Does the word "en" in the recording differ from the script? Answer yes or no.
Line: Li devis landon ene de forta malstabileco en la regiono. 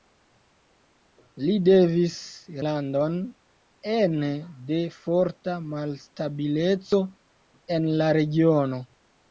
no